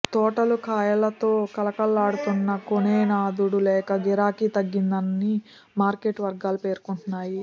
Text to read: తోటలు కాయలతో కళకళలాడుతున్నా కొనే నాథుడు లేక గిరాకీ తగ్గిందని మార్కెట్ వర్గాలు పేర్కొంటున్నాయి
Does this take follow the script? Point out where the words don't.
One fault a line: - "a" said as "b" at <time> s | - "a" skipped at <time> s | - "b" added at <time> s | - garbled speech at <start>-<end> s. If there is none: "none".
none